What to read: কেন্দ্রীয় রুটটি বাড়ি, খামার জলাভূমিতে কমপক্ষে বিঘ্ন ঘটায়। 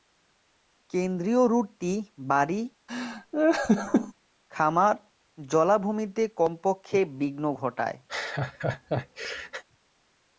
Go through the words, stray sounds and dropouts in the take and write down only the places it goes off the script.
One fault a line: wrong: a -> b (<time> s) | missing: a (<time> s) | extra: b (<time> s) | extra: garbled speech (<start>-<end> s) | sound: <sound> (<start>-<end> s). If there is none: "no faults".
sound: laugh (2.9-4.1 s)
sound: laugh (8.1-9.6 s)